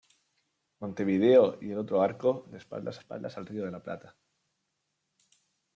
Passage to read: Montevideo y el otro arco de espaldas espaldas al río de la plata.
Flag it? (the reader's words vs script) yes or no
no